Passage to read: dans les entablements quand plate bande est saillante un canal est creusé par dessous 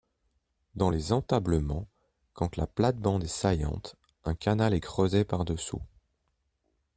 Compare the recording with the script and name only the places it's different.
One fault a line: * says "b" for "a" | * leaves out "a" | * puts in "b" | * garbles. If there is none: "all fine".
* puts in "la"